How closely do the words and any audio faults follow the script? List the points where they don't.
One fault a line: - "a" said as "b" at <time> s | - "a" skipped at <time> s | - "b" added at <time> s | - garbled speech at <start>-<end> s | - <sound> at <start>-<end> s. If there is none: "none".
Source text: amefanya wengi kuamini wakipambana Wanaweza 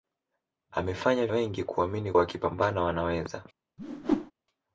- whoosh at 3.8-4.3 s